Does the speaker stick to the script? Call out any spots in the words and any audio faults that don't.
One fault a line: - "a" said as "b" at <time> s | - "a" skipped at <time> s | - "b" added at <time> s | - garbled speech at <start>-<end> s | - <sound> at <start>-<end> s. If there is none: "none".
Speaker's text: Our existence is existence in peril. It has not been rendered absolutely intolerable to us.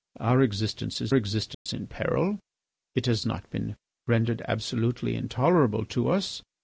- dropout at 1.5-1.7 s